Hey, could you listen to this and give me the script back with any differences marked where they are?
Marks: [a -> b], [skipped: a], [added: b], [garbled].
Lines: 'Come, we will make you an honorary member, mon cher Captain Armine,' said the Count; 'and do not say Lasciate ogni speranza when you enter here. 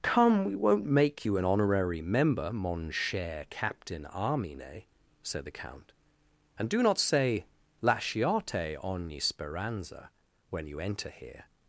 'Come, we [will -> won't] make you an honorary member, mon cher Captain Armine,' said the Count; 'and do not say Lasciate ogni speranza when you enter here.